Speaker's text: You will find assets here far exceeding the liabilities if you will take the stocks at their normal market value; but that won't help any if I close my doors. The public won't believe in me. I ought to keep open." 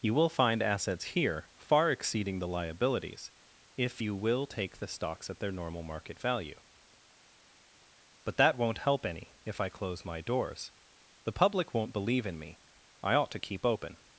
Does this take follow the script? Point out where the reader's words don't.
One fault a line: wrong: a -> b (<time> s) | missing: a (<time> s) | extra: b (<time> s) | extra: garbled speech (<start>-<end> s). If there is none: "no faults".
no faults